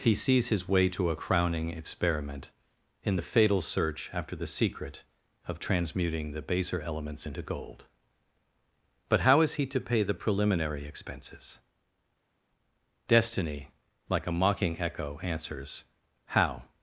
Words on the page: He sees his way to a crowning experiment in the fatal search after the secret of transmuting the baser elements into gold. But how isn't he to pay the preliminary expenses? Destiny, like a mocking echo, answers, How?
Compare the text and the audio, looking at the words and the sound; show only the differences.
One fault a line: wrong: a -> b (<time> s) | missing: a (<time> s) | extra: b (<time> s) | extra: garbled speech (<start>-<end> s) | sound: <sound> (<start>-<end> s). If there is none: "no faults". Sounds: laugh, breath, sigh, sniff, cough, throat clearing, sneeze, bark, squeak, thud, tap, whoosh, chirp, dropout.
wrong: isn't -> is (9.4 s)